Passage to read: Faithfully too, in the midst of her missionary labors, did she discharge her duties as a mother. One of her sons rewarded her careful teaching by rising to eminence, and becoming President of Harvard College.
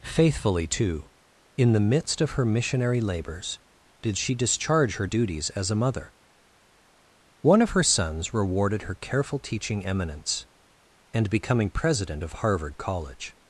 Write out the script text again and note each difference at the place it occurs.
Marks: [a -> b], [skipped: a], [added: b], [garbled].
Faithfully too, in the midst of her missionary labors, did she discharge her duties as a mother. One of her sons rewarded her careful teaching [skipped: by rising to] eminence, and becoming President of Harvard College.